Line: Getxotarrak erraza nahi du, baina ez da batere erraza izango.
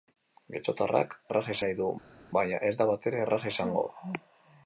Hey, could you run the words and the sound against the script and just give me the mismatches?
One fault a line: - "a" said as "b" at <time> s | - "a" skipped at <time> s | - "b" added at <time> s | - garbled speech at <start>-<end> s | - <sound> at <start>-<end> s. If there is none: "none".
none